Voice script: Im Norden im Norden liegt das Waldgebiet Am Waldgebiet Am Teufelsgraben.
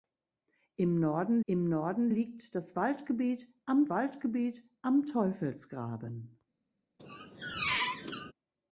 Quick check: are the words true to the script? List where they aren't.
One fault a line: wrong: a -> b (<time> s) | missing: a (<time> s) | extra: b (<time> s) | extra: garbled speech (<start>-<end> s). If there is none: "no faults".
no faults